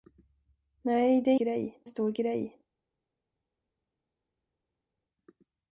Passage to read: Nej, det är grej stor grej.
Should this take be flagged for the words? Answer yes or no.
no